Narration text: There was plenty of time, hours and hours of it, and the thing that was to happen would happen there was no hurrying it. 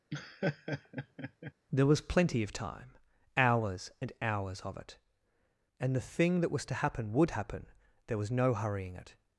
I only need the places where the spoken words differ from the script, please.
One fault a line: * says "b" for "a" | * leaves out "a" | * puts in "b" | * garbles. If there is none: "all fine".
all fine